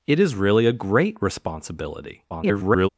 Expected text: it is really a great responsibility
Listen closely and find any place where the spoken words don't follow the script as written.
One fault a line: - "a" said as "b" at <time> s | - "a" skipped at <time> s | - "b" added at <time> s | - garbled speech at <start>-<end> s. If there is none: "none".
- garbled speech at 2.3-2.9 s